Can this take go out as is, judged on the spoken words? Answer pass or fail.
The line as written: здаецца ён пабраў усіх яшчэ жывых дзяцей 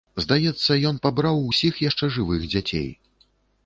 pass